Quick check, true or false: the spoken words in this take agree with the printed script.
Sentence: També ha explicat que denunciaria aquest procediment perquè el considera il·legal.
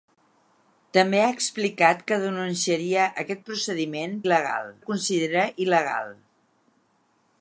false